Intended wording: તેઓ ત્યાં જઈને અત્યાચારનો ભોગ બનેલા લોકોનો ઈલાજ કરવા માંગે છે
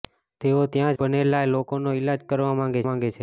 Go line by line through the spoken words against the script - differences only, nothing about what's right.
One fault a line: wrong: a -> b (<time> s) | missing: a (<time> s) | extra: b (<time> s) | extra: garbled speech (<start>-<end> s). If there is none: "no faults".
missing: જઈને અત્યાચારનો ભોગ (0.9 s)
extra: માંગે (2.9 s)